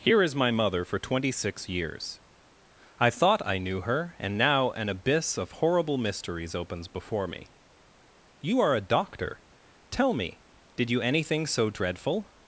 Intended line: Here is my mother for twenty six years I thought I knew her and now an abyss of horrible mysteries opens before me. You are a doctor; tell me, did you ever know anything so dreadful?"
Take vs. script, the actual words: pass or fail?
fail